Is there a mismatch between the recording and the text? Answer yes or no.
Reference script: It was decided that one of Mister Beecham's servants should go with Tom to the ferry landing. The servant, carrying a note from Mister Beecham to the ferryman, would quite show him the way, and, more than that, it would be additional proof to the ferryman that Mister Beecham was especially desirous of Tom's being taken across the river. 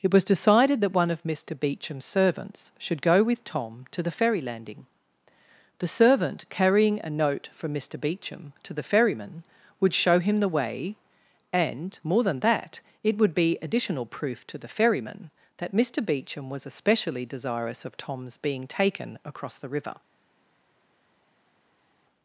yes